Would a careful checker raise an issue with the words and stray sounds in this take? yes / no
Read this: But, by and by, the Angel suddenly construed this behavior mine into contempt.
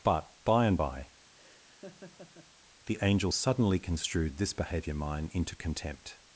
yes